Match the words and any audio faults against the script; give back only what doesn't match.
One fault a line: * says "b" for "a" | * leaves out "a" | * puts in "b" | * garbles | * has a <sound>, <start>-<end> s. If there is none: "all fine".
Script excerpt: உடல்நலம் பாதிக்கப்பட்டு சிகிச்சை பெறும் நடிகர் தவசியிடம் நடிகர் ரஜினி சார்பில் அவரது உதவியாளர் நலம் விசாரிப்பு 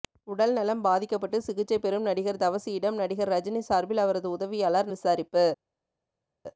* leaves out "நலம்"